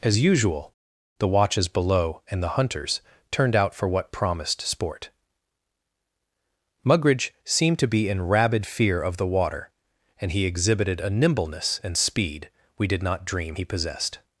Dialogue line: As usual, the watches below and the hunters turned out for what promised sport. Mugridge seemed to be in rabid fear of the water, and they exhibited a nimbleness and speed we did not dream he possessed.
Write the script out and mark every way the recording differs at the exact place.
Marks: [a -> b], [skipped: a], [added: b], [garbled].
As usual, the watches below and the hunters turned out for what promised sport. Mugridge seemed to be in rabid fear of the water, and [they -> he] exhibited a nimbleness and speed we did not dream he possessed.